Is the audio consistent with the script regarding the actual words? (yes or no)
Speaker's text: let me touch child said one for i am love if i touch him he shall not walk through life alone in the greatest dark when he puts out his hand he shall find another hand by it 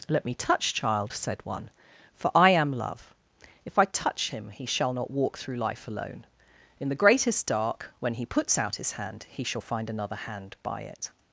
yes